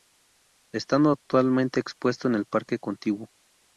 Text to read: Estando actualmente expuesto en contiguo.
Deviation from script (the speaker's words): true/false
true